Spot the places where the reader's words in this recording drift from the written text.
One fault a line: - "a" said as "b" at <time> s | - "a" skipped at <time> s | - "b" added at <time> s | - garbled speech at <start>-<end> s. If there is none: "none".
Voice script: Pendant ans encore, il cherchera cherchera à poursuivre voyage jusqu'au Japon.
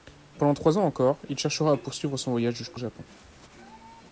- "trois" added at 0.6 s
- "cherchera" skipped at 1.7 s
- "son" added at 2.2 s